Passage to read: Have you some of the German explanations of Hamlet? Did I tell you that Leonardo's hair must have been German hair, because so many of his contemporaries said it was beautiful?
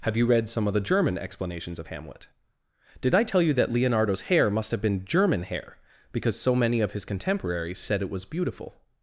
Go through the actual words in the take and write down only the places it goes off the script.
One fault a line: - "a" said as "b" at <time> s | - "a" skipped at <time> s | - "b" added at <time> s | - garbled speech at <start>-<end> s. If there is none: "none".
- "read" added at 0.2 s